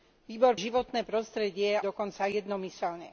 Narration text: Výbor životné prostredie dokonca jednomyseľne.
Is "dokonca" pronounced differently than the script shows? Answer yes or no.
no